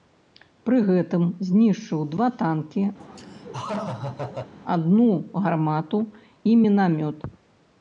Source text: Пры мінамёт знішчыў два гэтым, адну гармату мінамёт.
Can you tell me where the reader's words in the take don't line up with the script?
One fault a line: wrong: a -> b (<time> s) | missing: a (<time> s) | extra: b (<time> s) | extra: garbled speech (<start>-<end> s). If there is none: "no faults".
wrong: мінамёт -> гэтым (0.9 s)
wrong: гэтым -> танкі (2.4 s)
extra: і (6.5 s)